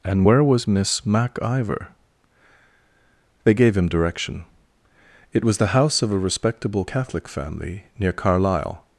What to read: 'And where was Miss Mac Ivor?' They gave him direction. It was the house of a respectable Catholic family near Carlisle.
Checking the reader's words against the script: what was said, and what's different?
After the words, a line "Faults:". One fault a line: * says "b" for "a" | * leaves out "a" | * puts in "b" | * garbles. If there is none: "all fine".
'And where was Miss Mac Ivor?' They gave him direction. It was the house of a respectable Catholic family near Carlisle.
Faults:
all fine